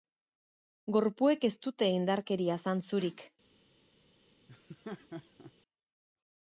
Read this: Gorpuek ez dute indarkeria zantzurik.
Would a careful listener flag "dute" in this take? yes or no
no